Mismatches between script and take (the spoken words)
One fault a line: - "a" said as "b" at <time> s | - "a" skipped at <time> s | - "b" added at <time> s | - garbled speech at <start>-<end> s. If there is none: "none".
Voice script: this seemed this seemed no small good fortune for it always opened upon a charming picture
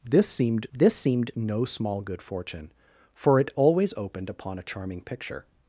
none